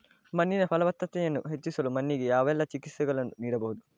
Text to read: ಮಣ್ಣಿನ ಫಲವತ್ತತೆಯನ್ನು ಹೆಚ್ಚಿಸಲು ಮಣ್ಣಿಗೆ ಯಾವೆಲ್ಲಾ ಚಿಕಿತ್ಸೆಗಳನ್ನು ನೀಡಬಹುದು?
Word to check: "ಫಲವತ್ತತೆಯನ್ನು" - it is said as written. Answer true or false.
true